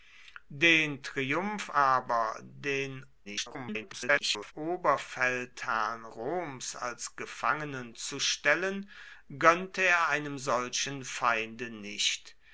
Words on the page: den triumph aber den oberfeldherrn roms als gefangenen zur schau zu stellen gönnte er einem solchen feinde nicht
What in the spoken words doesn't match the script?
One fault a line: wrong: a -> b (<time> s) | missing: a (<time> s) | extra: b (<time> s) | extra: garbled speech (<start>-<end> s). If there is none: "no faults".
extra: garbled speech (3.2-4.5 s)
missing: zur schau (7.9 s)